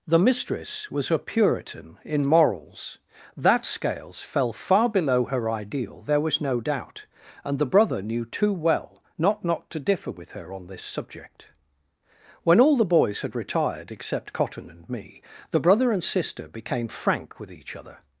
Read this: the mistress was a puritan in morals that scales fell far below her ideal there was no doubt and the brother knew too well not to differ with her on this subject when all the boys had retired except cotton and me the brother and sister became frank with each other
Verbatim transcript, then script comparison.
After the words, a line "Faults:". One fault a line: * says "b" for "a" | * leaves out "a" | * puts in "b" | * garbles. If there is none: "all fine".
the mistress was a puritan in morals that scales fell far below her ideal there was no doubt and the brother knew too well not not to differ with her on this subject when all the boys had retired except cotton and me the brother and sister became frank with each other
Faults:
* puts in "not"